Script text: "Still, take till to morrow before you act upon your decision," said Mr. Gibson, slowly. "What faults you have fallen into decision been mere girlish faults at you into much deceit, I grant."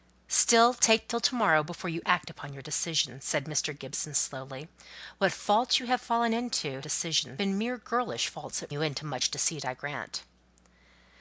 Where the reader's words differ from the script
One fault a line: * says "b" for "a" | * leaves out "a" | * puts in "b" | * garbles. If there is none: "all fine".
all fine